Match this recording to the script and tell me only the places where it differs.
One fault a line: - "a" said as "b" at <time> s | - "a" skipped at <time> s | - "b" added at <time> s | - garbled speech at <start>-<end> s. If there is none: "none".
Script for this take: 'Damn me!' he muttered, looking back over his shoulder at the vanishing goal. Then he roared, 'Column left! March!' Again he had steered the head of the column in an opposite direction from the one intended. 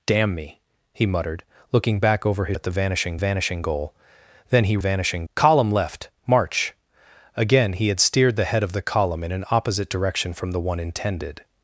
- "shoulder" skipped at 2.6 s
- "vanishing" added at 3.2 s
- "roared" said as "vanishing" at 4.8 s